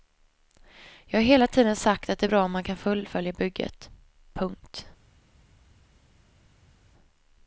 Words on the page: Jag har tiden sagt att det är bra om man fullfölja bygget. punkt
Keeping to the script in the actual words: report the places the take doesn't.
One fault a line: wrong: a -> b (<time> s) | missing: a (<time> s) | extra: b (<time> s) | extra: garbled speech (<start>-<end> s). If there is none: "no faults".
extra: hela (1.2 s)
extra: kan (2.6 s)